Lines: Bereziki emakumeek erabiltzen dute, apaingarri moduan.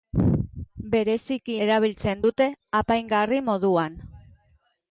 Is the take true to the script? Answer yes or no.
no